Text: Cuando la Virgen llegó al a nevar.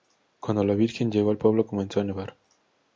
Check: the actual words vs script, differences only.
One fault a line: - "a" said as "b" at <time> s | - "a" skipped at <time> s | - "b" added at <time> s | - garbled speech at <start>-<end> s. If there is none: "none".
- "pueblo comenzó" added at 1.4 s